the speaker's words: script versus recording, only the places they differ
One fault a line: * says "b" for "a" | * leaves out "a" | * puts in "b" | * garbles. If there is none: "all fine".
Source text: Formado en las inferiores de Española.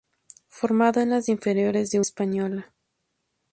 all fine